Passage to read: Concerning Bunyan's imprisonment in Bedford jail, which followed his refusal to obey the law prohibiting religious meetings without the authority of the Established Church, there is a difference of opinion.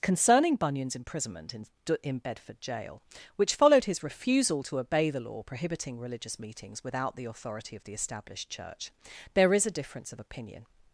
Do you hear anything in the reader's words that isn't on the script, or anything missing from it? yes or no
yes